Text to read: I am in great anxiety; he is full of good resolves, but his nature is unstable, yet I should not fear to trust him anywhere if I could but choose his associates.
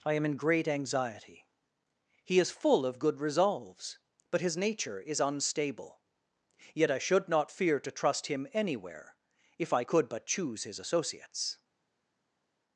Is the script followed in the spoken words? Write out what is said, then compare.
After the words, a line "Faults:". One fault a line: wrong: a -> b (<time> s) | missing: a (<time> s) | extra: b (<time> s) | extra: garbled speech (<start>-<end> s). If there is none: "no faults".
I am in great anxiety; he is full of good resolves, but his nature is unstable, yet I should not fear to trust him anywhere if I could but choose his associates.
Faults:
no faults